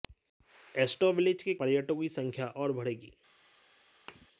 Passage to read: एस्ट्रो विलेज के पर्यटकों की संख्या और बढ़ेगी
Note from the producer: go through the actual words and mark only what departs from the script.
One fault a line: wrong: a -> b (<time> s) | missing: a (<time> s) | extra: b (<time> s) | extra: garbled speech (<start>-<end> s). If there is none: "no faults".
no faults